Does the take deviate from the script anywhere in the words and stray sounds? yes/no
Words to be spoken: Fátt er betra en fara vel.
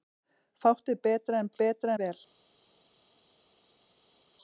yes